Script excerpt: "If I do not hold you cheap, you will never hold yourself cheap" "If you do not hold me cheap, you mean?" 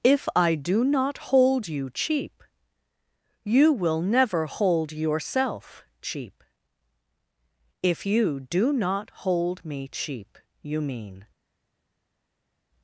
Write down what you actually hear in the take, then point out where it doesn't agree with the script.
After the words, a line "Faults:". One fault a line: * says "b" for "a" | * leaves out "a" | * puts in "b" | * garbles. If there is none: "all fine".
"If I do not hold you cheap, you will never hold yourself cheap" "If you do not hold me cheap, you mean?"
Faults:
all fine